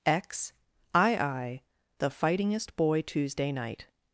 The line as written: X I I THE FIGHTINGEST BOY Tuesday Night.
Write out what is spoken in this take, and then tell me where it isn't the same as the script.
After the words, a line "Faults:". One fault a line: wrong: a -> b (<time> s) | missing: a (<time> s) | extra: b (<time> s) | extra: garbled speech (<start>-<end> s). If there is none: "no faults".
X I I THE FIGHTINGEST BOY Tuesday Night.
Faults:
no faults